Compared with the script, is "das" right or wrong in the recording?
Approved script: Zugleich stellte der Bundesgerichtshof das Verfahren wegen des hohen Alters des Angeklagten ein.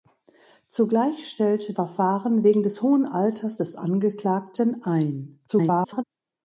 wrong